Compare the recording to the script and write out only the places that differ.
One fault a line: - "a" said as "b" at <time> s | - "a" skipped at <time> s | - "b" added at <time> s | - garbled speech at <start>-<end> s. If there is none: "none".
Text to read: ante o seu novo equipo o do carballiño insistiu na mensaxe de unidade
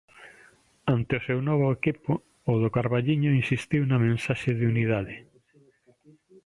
none